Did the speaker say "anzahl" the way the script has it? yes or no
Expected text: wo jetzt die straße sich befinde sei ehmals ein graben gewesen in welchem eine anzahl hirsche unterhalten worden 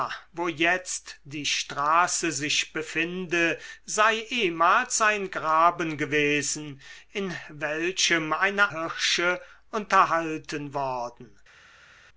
no